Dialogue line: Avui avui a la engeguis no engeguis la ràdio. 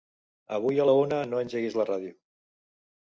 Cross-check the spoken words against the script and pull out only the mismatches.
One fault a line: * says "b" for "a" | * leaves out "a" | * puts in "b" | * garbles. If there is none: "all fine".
* leaves out "avui"
* says "una" for "engeguis"